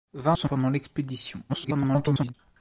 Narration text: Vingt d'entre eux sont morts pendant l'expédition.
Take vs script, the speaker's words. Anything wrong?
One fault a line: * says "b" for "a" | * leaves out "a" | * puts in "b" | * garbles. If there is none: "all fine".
* leaves out "d'entre"
* leaves out "morts"
* garbles